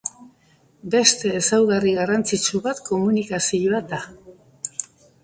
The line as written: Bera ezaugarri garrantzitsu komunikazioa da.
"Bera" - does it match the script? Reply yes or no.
no